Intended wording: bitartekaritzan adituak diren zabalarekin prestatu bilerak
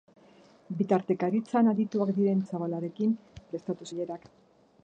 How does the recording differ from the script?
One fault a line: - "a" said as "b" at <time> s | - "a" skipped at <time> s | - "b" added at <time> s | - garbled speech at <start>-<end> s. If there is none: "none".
none